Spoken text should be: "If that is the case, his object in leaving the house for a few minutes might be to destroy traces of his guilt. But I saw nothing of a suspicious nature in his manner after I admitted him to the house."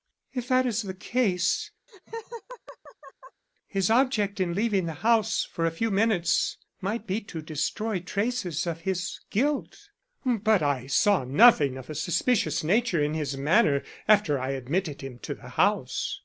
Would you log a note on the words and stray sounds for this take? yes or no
yes